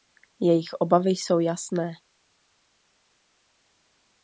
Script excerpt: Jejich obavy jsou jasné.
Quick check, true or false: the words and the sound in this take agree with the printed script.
true